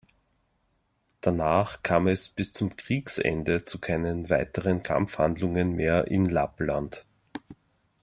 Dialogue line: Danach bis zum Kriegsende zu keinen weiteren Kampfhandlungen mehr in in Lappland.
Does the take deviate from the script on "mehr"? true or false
false